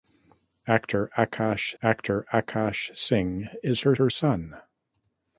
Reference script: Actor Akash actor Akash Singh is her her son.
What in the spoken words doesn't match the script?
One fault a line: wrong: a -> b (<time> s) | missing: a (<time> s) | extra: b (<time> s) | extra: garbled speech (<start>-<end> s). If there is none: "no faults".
no faults